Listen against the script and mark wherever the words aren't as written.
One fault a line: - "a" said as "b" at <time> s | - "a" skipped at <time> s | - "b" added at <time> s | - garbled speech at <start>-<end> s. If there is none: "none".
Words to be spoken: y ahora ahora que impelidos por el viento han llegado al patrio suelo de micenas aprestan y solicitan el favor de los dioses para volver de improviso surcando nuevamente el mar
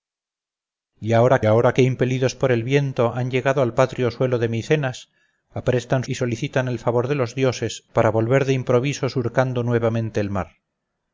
none